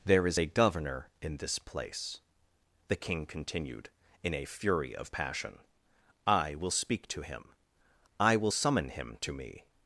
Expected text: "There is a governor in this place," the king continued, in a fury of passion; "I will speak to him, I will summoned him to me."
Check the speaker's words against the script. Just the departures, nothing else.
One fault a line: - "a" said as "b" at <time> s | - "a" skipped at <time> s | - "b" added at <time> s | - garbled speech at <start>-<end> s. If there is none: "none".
- "summoned" said as "summon" at 8.5 s